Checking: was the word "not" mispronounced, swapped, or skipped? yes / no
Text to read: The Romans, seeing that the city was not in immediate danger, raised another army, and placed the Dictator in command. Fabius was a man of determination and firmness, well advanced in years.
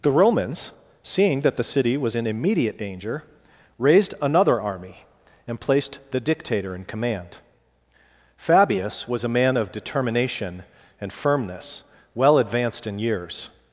yes